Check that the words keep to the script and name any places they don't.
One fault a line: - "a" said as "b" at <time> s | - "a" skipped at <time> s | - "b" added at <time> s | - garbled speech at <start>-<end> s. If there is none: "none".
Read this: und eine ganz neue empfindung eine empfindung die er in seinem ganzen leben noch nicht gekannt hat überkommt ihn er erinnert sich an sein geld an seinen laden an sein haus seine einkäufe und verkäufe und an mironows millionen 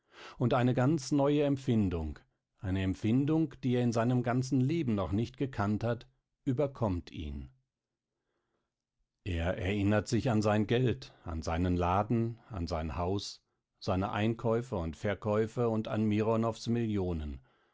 none